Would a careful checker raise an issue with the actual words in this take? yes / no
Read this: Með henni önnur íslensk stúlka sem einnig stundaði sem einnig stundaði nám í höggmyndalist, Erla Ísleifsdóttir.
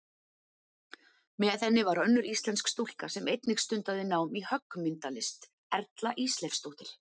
yes